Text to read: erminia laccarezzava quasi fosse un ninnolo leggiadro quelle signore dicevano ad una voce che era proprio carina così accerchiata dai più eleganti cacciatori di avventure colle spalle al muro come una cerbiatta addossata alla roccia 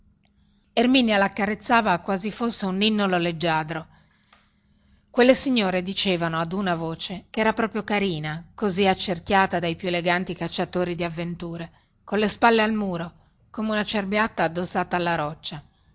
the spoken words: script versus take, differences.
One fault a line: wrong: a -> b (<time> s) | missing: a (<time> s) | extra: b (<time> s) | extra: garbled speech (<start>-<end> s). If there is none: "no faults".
no faults